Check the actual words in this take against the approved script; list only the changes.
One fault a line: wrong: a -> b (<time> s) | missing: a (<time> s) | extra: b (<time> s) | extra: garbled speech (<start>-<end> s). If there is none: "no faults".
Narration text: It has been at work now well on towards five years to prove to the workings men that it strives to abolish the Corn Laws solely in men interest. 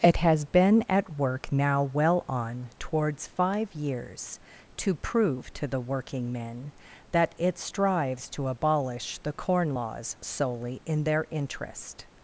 wrong: workings -> working (5.8 s)
wrong: men -> their (11.0 s)